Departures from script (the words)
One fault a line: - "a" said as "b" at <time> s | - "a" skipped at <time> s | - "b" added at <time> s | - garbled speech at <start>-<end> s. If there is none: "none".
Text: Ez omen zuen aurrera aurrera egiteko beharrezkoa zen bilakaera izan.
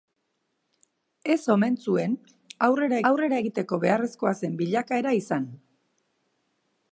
none